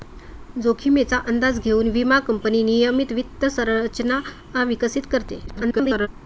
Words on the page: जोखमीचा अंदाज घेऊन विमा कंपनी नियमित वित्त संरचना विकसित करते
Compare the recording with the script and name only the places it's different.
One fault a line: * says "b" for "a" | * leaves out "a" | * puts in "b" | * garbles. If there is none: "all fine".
* garbles